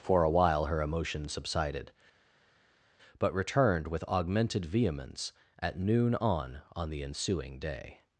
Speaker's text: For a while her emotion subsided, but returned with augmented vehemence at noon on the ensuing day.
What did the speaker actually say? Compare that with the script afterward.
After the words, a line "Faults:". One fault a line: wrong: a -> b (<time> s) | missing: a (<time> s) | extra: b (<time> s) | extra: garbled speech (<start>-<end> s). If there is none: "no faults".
For a while her emotion subsided, but returned with augmented vehemence at noon on on the ensuing day.
Faults:
extra: on (6.7 s)